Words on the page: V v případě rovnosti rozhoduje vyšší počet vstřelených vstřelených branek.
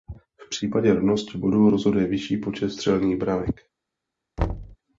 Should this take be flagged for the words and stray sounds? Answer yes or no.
yes